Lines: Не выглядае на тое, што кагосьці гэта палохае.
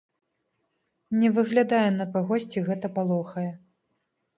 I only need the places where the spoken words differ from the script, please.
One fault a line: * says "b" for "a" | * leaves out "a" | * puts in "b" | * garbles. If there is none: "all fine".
* leaves out "тое што"